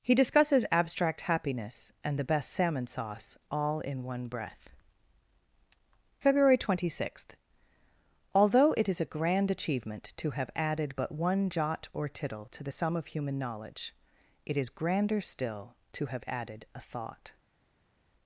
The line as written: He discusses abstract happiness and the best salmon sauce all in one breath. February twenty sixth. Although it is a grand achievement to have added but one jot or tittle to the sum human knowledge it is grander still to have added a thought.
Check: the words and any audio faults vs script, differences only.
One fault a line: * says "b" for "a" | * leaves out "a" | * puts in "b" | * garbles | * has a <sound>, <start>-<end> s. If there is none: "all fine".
* puts in "of"